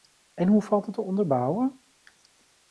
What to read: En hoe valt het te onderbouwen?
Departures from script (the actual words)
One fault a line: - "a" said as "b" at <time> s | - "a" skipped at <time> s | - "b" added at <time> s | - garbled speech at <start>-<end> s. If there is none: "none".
none